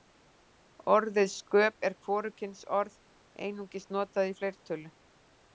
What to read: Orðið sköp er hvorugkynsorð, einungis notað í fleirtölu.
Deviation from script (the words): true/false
false